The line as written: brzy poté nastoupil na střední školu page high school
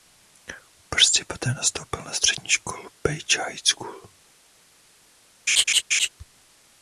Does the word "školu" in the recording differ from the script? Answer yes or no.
no